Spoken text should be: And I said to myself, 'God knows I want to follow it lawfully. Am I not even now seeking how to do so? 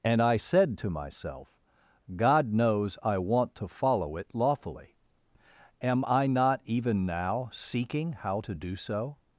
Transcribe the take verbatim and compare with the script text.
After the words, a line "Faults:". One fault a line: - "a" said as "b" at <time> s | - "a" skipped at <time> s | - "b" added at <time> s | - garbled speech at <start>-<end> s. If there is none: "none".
And I said to myself, 'God knows I want to follow it lawfully. Am I not even now seeking how to do so?
Faults:
none